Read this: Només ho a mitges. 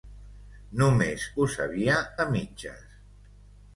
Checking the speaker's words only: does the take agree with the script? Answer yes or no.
no